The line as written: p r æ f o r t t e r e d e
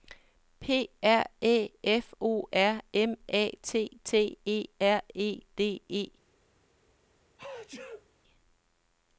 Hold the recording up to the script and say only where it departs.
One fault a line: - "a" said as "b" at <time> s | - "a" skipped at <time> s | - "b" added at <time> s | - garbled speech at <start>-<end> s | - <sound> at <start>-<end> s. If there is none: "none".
- "m a" added at 2.9 s
- sneeze at 7.4-8.1 s